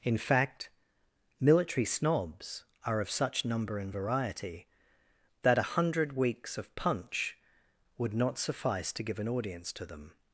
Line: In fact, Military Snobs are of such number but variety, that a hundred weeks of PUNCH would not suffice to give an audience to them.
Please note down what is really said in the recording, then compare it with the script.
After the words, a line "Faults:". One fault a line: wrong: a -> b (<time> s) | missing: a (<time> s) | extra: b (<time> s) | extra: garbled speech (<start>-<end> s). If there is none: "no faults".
In fact, Military Snobs are of such number and variety, that a hundred weeks of PUNCH would not suffice to give an audience to them.
Faults:
wrong: but -> and (3.8 s)